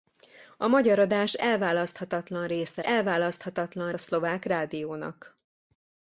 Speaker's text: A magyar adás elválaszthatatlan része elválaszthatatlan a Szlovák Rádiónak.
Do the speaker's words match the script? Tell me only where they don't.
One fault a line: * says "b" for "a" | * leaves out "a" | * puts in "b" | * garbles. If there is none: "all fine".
all fine